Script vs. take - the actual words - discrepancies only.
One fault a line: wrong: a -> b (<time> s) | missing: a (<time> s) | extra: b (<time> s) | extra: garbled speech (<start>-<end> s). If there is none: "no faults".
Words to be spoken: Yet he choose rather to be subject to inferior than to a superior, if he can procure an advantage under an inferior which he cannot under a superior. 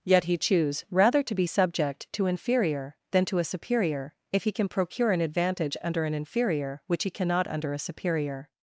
no faults